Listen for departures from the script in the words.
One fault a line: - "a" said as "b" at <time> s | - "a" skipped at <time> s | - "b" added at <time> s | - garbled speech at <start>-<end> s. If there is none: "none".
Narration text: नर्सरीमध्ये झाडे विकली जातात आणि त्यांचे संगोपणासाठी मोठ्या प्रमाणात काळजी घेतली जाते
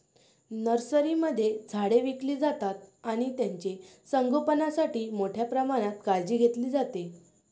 none